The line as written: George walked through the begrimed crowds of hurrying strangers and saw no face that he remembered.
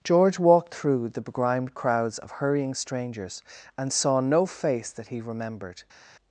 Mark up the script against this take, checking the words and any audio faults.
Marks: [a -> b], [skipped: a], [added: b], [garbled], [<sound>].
George walked through the begrimed crowds of hurrying strangers and saw no face that he remembered.